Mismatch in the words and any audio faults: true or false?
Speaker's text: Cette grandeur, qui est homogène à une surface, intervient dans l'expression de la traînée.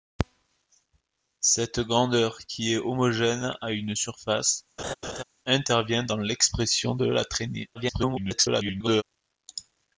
true